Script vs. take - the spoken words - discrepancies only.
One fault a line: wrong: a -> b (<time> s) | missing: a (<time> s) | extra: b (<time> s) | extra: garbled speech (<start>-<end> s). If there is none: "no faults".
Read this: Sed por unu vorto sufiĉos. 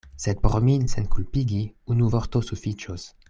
extra: min senkulpigi (0.7 s)